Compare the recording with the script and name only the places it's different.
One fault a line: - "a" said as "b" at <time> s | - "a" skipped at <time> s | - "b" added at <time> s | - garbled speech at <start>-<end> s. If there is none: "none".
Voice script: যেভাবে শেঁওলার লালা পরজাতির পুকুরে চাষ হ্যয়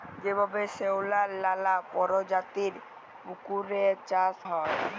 none